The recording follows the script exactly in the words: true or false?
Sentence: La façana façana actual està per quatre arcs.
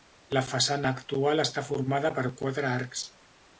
false